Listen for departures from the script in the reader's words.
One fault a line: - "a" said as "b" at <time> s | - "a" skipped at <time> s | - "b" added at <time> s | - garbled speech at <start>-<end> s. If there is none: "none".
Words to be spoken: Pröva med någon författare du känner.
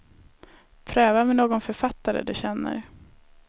none